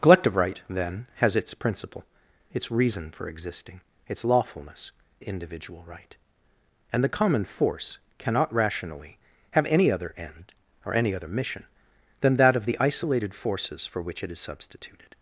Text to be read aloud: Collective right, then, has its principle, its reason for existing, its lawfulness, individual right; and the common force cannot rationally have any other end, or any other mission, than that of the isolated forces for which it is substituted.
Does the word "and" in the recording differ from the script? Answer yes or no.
no